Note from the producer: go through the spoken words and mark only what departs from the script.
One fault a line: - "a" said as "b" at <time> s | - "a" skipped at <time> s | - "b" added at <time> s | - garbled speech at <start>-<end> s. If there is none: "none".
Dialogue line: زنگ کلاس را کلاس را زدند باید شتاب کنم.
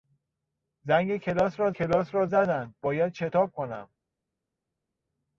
none